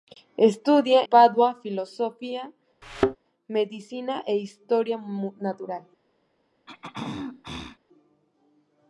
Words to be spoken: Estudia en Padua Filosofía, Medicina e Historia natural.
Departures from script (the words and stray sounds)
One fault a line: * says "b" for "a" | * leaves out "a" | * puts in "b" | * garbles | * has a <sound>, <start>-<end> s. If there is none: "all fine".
* leaves out "en"
* has a thud, 2.8-3.2 s
* has a throat clearing, 6.7-7.8 s